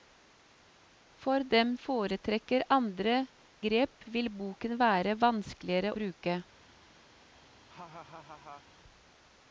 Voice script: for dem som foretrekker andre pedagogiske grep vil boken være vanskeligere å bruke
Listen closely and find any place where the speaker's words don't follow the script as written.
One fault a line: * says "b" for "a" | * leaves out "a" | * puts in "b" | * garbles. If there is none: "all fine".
* leaves out "som"
* leaves out "pedagogiske"
* leaves out "å"